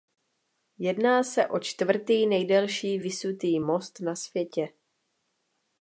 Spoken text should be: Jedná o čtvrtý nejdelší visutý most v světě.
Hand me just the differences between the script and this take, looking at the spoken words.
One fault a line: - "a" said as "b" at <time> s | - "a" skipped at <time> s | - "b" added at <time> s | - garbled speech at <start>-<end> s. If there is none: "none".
- "se" added at 1.2 s
- "v" said as "na" at 4.0 s